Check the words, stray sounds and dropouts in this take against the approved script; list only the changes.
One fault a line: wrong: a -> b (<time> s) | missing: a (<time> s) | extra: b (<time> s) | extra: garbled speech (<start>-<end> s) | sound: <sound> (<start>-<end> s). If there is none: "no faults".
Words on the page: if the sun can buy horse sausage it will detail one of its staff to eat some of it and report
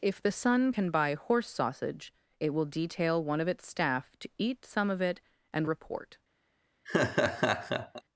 sound: laugh (6.9-8.0 s)